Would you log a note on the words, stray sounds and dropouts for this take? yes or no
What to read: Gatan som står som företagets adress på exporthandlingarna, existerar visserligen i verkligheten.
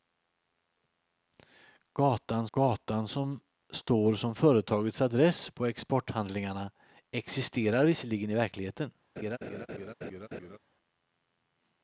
yes